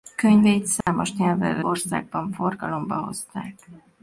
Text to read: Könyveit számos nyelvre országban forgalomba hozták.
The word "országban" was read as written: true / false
true